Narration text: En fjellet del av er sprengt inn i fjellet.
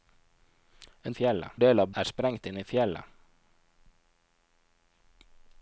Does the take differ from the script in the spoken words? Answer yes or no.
no